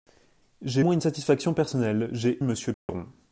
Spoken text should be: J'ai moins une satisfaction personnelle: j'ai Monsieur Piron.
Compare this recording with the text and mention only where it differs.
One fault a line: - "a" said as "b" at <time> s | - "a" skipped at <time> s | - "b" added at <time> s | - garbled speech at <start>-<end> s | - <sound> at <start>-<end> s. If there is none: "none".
- dropout at 2.7-2.9 s